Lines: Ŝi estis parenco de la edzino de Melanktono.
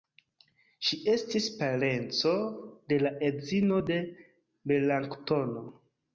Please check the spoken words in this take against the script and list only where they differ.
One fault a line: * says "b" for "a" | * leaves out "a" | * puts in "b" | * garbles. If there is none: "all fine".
all fine